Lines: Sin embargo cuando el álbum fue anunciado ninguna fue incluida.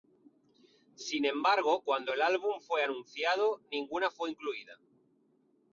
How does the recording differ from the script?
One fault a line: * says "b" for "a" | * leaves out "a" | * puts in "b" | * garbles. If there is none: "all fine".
all fine